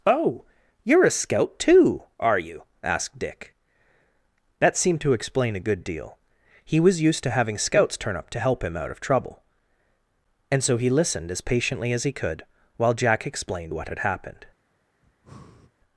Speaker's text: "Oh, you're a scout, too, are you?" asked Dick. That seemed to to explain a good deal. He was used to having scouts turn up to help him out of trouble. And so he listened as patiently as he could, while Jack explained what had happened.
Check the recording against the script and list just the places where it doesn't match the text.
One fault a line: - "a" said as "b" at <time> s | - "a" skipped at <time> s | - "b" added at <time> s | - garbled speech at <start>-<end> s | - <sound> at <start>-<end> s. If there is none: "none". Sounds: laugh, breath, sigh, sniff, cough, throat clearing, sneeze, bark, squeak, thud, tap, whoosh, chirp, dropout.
- "to" skipped at 5.1 s
- breath at 15.0-15.7 s